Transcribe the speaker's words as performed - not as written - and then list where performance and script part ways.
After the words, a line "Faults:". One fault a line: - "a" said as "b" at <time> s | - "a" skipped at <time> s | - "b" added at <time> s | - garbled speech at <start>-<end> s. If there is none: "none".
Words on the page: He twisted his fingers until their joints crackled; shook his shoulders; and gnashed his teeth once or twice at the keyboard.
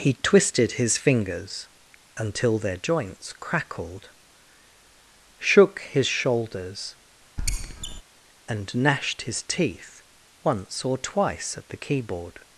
He twisted his fingers until their joints crackled; shook his shoulders; and gnashed his teeth once or twice at the keyboard.
Faults:
none